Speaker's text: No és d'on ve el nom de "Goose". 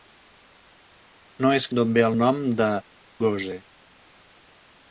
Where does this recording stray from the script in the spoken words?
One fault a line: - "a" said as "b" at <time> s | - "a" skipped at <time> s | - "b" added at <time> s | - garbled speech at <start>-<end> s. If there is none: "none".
none